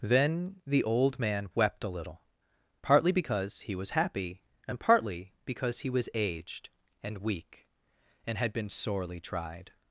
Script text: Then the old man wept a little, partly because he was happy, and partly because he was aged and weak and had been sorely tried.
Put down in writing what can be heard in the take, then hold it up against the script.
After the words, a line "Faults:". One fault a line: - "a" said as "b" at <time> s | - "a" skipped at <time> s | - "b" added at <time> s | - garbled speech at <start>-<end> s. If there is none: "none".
Then the old man wept a little, partly because he was happy, and partly because he was aged and weak and had been sorely tried.
Faults:
none